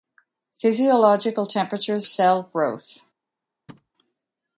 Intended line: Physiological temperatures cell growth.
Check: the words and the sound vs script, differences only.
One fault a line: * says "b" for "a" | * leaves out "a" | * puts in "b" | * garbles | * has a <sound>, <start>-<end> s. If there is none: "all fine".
* has a thud, 3.7-3.9 s